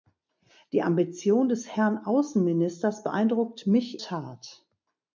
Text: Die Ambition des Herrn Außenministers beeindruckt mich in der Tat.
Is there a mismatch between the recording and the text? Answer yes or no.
yes